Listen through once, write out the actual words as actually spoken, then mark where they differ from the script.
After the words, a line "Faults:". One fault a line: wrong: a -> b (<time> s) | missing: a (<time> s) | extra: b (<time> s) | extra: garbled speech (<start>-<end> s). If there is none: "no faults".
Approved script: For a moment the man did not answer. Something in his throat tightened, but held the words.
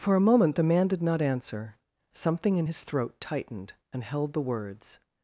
For a moment the man did not answer. Something in his throat tightened, and held the words.
Faults:
wrong: but -> and (3.9 s)